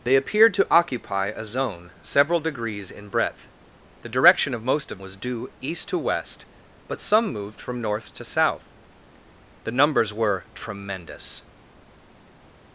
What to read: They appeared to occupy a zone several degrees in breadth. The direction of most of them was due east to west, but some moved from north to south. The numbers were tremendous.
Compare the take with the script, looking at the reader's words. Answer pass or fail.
fail